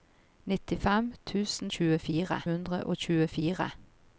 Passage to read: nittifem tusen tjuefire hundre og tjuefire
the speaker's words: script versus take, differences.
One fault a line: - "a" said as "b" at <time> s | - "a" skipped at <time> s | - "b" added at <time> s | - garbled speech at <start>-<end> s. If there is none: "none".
none